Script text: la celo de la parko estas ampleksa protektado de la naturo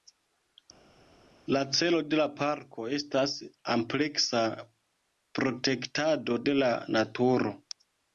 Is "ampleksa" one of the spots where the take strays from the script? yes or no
no